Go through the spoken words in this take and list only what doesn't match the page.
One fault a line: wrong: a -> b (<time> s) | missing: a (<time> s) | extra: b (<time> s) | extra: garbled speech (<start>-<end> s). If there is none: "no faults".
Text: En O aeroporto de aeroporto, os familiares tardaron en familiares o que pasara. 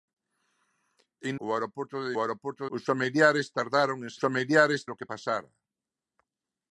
no faults